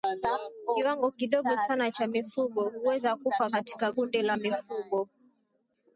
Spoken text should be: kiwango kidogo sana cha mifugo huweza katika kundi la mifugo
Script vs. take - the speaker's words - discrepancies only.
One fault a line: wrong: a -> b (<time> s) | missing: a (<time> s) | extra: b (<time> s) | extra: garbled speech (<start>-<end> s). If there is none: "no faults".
extra: kufa (3.1 s)